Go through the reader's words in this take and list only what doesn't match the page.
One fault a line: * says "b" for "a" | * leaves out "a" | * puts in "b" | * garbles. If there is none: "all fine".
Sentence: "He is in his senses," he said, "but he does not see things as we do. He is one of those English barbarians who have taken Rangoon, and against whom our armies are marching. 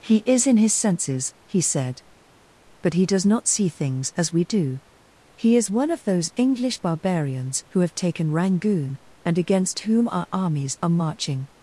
all fine